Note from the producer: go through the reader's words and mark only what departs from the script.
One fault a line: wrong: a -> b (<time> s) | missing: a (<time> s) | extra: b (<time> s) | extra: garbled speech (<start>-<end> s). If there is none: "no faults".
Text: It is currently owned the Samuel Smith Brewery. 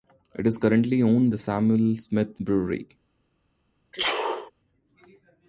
no faults